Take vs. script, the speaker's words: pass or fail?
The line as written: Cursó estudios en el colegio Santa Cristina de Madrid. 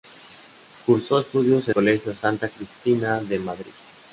fail